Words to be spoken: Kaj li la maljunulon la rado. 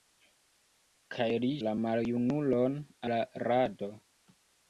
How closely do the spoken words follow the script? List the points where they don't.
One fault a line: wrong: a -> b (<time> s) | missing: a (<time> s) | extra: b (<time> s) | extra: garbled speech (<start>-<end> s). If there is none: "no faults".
no faults